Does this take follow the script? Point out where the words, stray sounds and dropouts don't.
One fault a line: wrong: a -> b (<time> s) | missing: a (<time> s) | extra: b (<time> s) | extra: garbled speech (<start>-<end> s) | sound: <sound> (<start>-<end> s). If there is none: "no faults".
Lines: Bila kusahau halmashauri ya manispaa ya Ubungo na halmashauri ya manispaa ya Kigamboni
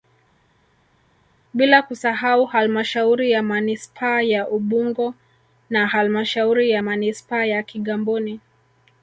no faults